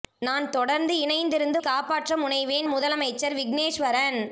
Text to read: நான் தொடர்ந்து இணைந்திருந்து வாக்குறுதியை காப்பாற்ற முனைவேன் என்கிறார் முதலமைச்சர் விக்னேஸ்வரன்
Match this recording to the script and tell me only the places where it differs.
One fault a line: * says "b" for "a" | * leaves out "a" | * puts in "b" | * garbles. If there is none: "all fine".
* leaves out "வாக்குறுதியை"
* leaves out "என்கிறார்"